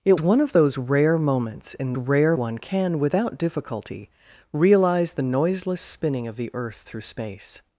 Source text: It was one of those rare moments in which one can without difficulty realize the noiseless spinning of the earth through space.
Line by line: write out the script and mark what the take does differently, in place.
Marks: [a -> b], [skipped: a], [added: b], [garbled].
It [skipped: was] one of those rare moments in [which -> rare] one can without difficulty realize the noiseless spinning of the earth through space.